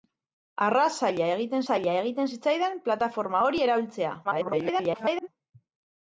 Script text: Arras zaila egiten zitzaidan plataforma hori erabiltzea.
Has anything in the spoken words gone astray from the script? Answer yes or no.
yes